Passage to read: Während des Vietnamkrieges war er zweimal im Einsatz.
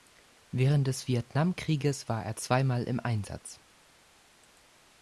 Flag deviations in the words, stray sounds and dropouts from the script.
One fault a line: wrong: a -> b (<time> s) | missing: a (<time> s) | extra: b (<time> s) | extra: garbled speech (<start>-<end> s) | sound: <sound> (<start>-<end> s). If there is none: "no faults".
no faults